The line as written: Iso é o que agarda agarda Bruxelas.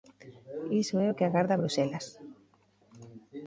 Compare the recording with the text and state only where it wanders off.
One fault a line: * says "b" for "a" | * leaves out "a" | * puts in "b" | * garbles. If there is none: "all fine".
* leaves out "agarda"